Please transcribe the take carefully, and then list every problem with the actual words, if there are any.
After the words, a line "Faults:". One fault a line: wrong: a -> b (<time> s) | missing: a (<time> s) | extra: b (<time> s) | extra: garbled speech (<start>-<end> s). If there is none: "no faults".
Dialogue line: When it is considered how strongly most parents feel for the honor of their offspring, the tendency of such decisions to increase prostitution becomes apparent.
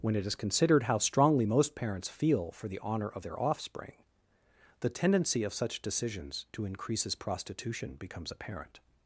When it is considered how strongly most parents feel for the honor of their offspring, the tendency of such decisions to increases prostitution becomes apparent.
Faults:
wrong: increase -> increases (6.6 s)